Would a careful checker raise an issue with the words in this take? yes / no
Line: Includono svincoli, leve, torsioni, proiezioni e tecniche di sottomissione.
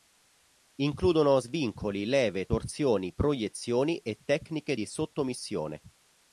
no